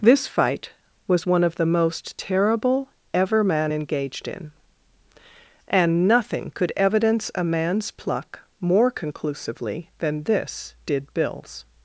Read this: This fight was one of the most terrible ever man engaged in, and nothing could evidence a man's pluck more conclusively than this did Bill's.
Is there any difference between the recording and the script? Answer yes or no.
no